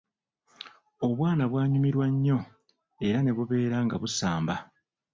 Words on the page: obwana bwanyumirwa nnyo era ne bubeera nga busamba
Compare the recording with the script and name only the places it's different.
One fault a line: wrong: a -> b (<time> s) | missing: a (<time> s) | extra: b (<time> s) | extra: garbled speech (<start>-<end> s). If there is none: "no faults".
no faults